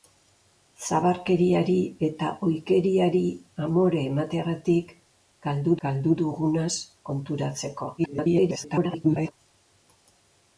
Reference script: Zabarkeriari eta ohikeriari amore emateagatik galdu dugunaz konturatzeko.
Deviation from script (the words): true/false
true